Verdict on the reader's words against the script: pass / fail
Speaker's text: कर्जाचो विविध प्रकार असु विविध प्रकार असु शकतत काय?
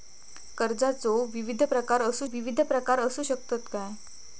pass